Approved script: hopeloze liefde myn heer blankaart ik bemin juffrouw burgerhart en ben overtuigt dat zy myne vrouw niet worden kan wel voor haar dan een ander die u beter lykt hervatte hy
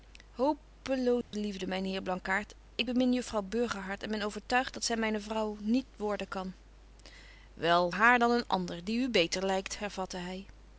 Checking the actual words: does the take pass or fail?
fail